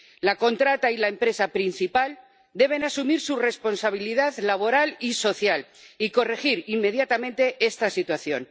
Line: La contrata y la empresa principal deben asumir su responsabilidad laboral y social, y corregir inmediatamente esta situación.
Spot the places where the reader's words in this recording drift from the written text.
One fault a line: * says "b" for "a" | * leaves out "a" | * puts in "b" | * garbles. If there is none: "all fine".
all fine